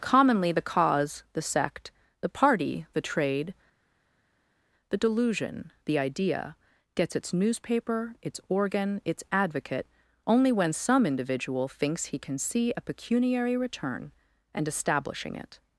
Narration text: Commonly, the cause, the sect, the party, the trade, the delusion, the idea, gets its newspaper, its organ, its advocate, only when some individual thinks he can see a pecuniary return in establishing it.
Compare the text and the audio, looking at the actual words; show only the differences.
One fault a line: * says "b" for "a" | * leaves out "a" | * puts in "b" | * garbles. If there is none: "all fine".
* says "and" for "in"